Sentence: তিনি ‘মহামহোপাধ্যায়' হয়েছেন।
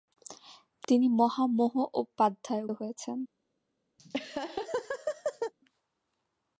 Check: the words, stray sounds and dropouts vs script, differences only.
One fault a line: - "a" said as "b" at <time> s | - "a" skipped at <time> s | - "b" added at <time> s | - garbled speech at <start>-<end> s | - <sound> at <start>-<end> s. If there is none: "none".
- laugh at 4.0-5.5 s